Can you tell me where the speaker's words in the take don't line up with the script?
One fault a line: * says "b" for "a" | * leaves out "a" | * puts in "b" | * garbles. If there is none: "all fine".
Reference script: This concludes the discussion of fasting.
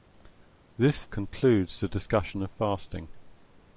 all fine